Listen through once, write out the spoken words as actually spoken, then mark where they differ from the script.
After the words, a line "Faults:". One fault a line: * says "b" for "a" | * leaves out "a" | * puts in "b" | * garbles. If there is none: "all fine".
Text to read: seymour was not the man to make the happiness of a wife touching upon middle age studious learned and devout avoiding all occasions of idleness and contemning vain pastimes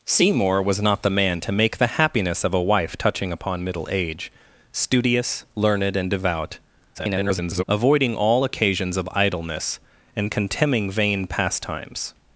seymour was not the man to make the happiness of a wife touching upon middle age studious learned and devout [garbled] avoiding all occasions of idleness and contemning vain pastimes
Faults:
* garbles